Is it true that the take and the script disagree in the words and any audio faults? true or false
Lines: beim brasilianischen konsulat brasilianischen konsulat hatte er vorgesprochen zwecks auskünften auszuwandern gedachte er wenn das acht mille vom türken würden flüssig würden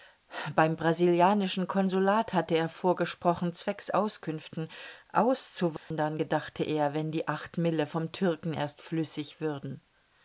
true